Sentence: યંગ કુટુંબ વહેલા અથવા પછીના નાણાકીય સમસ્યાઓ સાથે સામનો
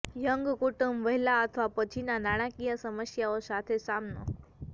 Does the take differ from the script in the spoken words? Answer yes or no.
no